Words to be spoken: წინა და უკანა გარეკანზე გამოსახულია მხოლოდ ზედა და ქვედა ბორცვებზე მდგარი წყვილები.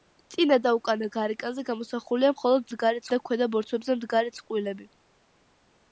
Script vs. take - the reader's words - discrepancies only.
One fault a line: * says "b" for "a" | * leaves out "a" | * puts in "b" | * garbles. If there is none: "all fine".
* says "მდგარი" for "ზედა"